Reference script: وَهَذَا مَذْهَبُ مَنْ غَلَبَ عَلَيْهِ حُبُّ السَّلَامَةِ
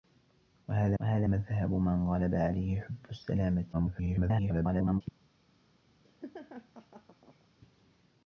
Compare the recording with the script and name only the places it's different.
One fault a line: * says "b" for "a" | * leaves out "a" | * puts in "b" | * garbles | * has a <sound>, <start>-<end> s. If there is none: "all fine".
* puts in "وَهَذَا"
* garbles
* has a laugh, 6.0-7.5 s